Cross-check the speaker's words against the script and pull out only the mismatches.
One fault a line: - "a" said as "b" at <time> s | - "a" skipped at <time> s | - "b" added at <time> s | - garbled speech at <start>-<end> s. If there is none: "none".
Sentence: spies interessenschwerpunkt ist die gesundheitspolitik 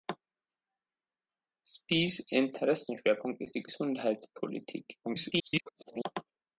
- garbled speech at 5.0-6.0 s